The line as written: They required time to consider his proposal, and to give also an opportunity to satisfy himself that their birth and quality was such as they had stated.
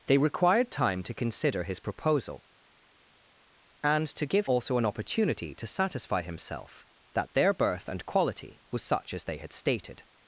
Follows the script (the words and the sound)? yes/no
yes